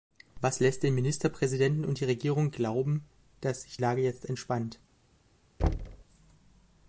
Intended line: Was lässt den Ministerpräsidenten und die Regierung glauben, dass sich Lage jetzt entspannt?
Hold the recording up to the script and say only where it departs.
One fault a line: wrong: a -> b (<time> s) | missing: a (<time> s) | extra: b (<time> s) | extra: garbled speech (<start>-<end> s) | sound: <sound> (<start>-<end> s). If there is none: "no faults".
sound: thud (5.6-6.0 s)